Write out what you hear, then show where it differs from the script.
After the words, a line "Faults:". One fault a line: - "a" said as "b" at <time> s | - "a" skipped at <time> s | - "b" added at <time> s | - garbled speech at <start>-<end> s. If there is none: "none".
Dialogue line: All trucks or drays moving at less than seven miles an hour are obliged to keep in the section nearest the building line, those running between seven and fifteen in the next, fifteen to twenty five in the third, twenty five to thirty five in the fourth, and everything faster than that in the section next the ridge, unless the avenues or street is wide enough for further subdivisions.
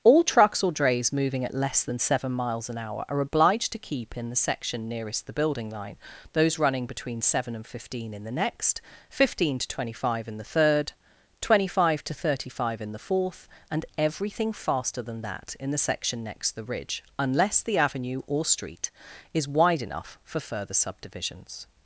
All trucks or drays moving at less than seven miles an hour are obliged to keep in the section nearest the building line, those running between seven and fifteen in the next, fifteen to twenty five in the third, twenty five to thirty five in the fourth, and everything faster than that in the section next the ridge, unless the avenue or street is wide enough for further subdivisions.
Faults:
- "avenues" said as "avenue" at 17.8 s